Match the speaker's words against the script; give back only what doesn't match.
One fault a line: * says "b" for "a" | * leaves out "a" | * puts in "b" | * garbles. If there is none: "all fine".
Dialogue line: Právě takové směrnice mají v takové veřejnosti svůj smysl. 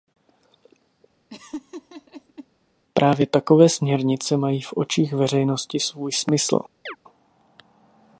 * says "očích" for "takové"